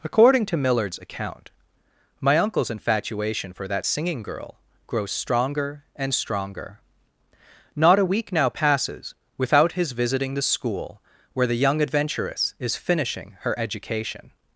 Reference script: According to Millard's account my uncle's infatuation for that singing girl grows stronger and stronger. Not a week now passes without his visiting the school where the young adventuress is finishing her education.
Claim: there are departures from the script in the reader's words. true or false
false